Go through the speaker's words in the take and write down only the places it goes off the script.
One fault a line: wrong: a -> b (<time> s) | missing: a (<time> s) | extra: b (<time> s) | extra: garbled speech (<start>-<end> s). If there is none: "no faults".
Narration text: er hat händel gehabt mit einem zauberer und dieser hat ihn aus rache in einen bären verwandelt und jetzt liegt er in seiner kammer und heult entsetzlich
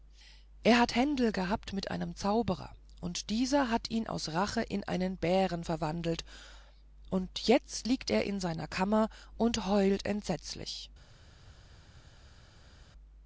no faults